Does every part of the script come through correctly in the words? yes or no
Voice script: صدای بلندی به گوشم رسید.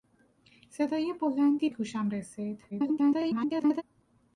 no